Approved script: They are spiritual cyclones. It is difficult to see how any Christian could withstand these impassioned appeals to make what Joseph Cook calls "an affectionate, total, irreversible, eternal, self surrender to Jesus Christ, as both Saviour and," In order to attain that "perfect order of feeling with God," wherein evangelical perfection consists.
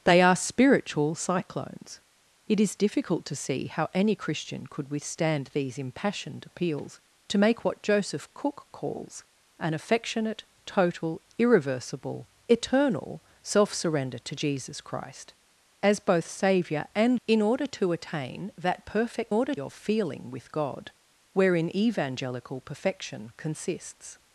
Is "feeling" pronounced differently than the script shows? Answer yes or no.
no